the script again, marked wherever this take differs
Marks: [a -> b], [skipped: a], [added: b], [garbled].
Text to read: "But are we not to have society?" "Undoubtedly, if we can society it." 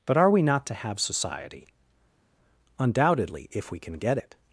"But are we not to have society?" "Undoubtedly, if we can [society -> get] it."